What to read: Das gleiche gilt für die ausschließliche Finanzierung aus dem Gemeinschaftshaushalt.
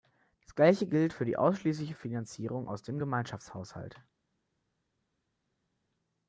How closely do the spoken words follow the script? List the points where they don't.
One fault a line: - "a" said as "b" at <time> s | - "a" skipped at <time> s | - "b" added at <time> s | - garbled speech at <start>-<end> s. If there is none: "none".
none